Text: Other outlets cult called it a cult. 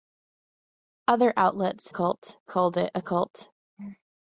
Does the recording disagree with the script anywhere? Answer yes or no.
no